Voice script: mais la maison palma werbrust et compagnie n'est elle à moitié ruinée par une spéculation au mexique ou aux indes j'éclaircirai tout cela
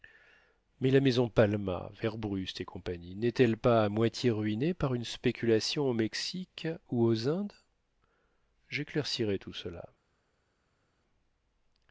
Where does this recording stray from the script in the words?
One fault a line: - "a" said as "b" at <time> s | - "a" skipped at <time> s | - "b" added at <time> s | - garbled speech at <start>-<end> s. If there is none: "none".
- "pas" added at 3.5 s